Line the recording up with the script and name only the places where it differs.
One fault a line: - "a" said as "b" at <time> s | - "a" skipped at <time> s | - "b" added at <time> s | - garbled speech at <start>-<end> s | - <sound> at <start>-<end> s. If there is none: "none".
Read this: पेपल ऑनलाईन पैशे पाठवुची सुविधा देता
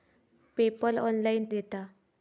- "पैशे पाठवुची सुविधा" skipped at 1.4 s